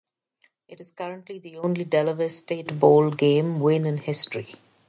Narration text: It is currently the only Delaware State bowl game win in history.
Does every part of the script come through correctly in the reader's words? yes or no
yes